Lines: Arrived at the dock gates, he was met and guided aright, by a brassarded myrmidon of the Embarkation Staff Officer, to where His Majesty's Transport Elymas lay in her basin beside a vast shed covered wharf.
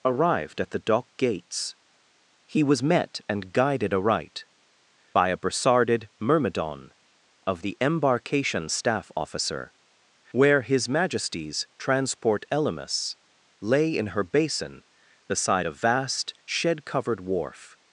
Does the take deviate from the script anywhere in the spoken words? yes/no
yes